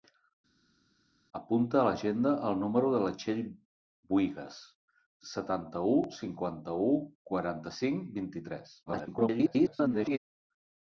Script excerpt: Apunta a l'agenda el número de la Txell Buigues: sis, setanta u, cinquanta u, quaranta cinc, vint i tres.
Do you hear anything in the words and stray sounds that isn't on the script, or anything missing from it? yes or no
yes